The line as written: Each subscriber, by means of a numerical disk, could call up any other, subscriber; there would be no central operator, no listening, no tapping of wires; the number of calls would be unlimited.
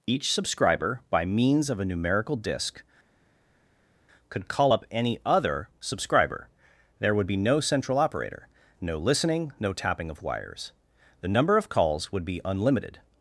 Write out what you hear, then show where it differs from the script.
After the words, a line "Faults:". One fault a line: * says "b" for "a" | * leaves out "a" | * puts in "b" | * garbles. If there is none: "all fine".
Each subscriber, by means of a numerical disk, could call up any other, subscriber; there would be no central operator, no listening, no tapping of wires; the number of calls would be unlimited.
Faults:
all fine